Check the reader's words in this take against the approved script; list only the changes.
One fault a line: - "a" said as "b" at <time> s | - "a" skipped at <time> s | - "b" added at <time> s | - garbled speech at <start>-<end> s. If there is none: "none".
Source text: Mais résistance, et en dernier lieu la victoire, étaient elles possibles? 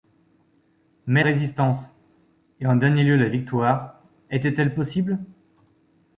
none